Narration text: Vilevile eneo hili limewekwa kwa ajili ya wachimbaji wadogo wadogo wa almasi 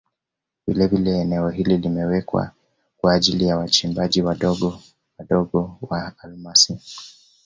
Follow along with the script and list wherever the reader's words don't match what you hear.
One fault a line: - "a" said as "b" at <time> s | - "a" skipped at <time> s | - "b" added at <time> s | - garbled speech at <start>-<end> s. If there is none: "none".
none